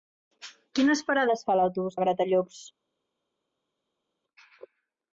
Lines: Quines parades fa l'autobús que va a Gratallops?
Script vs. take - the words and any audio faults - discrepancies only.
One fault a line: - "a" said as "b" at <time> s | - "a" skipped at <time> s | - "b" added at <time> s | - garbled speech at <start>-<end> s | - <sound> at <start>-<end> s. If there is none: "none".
- "que" skipped at 2.0 s